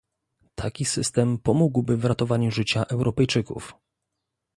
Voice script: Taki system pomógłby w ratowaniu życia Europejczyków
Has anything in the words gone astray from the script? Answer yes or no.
no